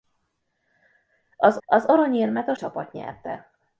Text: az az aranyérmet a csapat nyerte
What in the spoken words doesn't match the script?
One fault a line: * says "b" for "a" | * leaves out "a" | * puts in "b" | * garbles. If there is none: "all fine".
all fine